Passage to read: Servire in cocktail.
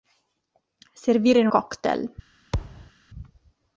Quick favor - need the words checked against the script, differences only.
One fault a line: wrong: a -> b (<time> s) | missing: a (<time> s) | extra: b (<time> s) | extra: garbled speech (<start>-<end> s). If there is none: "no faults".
no faults